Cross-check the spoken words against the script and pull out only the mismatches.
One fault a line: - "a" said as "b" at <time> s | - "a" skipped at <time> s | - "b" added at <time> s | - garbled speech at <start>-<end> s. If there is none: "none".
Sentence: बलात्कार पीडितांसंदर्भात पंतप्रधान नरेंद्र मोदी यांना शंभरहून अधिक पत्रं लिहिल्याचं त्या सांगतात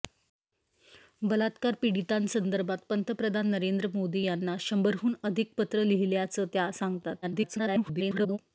- garbled speech at 7.2-8.4 s